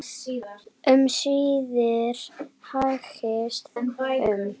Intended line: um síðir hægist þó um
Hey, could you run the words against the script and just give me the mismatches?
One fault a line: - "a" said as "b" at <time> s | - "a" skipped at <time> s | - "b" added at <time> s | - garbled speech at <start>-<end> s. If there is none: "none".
- "þó" skipped at 3.7 s